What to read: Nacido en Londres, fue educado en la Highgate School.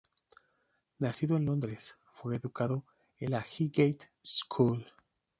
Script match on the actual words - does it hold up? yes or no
yes